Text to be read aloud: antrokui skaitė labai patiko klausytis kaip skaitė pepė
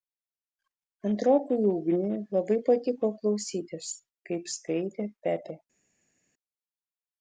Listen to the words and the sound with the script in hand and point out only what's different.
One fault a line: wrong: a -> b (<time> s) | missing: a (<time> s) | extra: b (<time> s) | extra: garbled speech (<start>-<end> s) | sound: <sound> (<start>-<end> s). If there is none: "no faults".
wrong: skaitė -> ugniui (1.7 s)